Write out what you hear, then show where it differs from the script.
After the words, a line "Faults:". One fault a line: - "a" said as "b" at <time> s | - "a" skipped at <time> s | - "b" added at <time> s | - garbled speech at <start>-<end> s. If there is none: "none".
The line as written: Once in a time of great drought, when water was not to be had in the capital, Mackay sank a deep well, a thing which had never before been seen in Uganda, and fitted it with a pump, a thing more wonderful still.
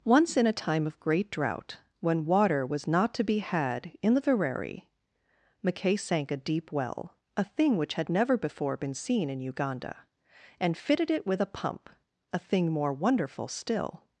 Once in a time of great drought, when water was not to be had in the vereri, Mackay sank a deep well, a thing which had never before been seen in Uganda, and fitted it with a pump, a thing more wonderful still.
Faults:
- "capital" said as "vereri" at 4.2 s